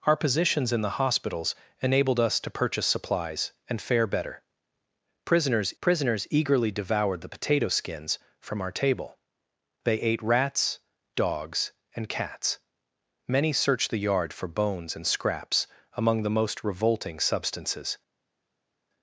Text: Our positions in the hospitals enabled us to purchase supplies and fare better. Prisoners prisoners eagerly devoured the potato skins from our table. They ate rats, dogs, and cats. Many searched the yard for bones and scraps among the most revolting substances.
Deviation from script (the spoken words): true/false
false